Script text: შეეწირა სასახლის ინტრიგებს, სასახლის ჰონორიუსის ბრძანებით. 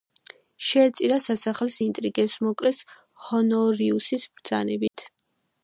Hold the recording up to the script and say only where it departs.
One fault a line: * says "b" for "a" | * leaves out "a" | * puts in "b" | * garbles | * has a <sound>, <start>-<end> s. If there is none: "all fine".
* says "მოკლეს" for "სასახლის"
* has a dropout, 4.9-4.9 s